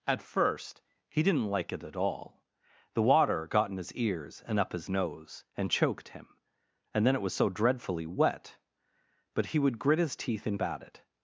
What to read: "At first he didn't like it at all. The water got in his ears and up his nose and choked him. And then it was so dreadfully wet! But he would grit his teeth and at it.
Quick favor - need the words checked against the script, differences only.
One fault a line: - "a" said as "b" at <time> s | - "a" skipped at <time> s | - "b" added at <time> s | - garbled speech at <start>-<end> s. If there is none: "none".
none